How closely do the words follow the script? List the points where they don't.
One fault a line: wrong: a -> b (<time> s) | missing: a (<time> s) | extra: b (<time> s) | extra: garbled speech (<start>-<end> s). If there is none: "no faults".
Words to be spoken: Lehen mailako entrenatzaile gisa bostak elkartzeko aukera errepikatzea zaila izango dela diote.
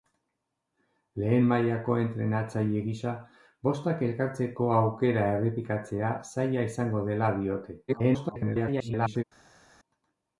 extra: garbled speech (7.9-9.2 s)